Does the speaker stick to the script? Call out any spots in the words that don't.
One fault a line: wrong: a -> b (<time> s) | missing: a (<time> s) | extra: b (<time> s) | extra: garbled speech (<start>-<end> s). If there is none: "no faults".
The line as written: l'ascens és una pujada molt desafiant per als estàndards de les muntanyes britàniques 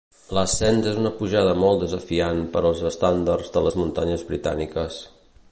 no faults